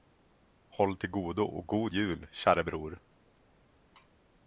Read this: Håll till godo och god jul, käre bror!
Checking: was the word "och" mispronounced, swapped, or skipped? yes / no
no